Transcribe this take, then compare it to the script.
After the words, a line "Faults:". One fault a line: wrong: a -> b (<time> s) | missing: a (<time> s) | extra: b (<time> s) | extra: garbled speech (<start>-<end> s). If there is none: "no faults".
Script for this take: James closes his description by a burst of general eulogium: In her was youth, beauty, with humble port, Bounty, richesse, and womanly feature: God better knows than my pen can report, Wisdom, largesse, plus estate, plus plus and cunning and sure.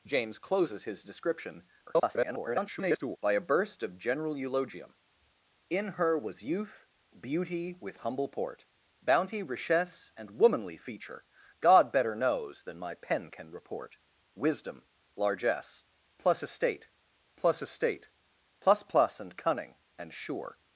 James closes his description [garbled] by a burst of general eulogium: In her was youth, beauty, with humble port, Bounty, richesse, and womanly feature: God better knows than my pen can report, Wisdom, largesse, plus estate plus estate, plus plus and cunning and sure.
Faults:
extra: garbled speech (1.9-3.2 s)
extra: estate plus (17.6 s)